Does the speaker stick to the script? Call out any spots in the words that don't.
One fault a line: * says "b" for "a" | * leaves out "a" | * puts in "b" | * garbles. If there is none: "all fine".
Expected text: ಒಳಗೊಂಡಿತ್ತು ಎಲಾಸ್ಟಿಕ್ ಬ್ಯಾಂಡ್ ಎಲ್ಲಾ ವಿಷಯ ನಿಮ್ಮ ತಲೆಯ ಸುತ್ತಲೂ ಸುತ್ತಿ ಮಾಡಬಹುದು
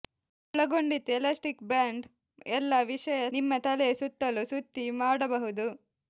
all fine